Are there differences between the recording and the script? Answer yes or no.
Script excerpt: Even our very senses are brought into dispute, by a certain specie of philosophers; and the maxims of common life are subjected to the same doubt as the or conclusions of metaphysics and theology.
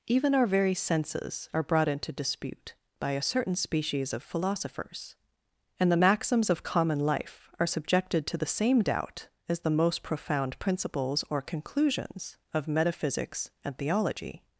yes